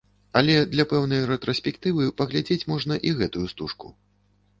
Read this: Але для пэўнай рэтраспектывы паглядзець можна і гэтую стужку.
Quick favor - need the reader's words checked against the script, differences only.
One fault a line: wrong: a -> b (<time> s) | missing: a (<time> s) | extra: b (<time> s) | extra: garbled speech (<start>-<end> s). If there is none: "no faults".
no faults